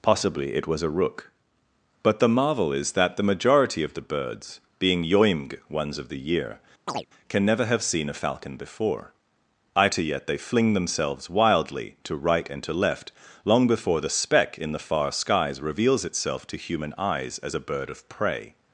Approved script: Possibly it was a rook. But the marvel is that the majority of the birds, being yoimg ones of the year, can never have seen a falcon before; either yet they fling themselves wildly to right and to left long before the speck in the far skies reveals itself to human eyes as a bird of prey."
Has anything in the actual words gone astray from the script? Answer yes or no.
no